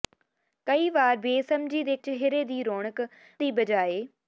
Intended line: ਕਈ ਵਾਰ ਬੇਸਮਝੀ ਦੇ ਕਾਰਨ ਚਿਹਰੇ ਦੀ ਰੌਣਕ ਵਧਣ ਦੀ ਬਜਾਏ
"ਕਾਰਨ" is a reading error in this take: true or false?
true